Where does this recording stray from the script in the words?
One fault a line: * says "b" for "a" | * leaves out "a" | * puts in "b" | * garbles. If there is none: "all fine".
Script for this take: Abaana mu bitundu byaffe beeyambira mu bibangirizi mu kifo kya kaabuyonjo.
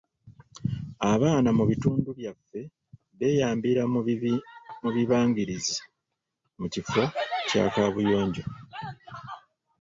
all fine